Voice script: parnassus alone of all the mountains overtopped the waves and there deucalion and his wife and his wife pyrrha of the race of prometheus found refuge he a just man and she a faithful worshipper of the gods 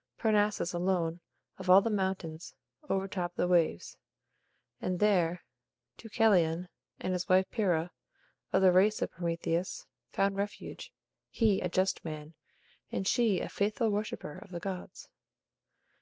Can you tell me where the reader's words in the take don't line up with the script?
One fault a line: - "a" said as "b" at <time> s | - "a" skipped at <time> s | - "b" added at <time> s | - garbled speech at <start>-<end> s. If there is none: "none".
- "and his wife" skipped at 7.5 s